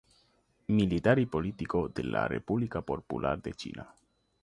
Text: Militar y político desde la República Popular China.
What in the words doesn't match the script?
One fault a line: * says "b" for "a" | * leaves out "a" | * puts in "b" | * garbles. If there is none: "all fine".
* says "de" for "desde"
* puts in "de"